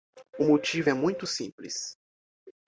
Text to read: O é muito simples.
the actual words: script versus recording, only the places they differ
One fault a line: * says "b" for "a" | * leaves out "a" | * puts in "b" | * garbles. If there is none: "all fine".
* puts in "motivo"